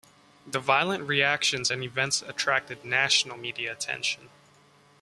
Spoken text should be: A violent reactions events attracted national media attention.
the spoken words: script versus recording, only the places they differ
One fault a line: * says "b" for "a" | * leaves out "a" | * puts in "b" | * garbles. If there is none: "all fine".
* says "The" for "A"
* puts in "and"